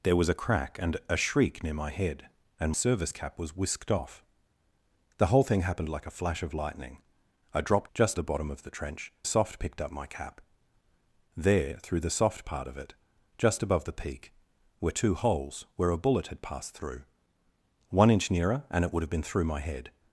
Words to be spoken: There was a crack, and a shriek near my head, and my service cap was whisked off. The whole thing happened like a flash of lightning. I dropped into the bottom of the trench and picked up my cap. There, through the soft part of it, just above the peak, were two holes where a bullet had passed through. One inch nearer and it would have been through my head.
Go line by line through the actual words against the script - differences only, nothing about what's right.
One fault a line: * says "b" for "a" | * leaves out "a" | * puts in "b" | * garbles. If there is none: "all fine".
* leaves out "my"
* says "just" for "into"
* says "soft" for "and"